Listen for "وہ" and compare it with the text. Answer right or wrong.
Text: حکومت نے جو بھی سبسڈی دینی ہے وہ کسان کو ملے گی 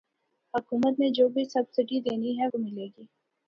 wrong